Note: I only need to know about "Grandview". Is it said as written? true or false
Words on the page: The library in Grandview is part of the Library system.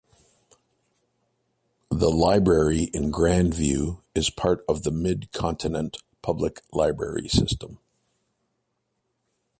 true